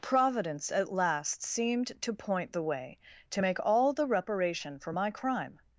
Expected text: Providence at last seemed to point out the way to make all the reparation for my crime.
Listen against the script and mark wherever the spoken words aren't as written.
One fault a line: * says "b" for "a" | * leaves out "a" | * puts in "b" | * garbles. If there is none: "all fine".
* leaves out "out"